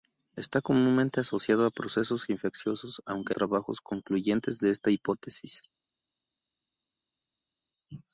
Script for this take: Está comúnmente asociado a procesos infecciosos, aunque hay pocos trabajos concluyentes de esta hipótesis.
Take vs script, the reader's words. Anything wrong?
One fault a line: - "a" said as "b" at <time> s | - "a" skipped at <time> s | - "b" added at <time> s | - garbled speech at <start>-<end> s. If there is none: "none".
- "hay pocos" skipped at 3.3 s